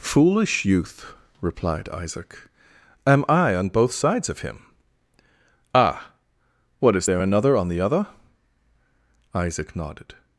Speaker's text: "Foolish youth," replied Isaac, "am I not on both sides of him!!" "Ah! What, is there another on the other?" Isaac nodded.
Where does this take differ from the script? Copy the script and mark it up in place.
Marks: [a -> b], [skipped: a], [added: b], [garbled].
"Foolish youth," replied Isaac, "am I [skipped: not] on both sides of him!!" "Ah! What, is there another on the other?" Isaac nodded.